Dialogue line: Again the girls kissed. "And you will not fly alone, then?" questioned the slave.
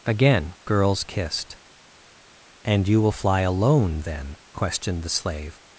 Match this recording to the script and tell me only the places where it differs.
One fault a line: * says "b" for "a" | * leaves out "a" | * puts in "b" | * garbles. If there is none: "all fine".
* leaves out "the"
* leaves out "not"